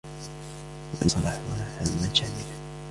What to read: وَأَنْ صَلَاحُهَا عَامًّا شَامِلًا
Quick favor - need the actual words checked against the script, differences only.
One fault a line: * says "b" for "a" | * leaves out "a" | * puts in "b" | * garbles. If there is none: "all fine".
all fine